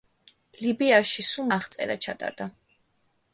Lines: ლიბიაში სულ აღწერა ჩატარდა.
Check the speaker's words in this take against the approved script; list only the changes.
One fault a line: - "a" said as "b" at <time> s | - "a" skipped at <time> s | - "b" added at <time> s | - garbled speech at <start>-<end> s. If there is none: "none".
none